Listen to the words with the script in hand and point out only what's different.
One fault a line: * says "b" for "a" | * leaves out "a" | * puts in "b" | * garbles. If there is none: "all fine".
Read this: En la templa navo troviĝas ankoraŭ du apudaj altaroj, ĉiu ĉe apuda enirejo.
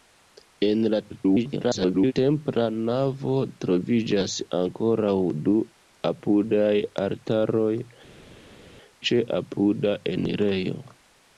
* garbles
* leaves out "ĉiu"